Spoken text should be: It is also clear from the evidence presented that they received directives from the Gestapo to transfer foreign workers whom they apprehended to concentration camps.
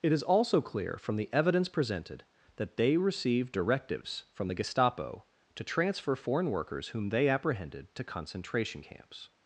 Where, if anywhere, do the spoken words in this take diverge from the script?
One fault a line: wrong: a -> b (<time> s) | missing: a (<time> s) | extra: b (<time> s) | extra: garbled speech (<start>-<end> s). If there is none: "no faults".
no faults